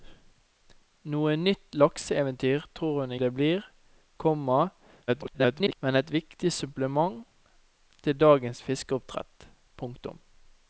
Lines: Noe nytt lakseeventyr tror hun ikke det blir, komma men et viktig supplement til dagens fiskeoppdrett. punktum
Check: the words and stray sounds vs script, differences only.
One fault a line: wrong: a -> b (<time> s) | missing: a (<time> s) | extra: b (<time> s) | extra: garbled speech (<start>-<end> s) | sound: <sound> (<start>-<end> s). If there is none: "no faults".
missing: ikke (3.1 s)
extra: garbled speech (5.1-5.8 s)